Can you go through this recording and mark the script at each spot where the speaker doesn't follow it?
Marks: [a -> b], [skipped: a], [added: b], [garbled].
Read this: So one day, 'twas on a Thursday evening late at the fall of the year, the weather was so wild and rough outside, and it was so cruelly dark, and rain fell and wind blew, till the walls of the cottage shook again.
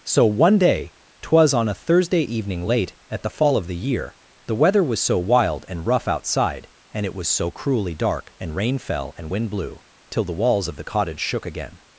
So one day, 'twas on a Thursday evening late at the fall of the year, the weather was so wild and rough outside, and it was so cruelly dark, and rain fell and wind blew, till the walls of the cottage shook again.